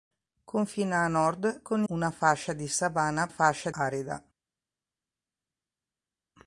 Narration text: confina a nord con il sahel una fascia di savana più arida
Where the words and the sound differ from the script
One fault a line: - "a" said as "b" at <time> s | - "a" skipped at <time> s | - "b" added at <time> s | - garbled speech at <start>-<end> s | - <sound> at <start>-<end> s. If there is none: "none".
- "il sahel" skipped at 1.8 s
- "più" said as "fascia" at 3.3 s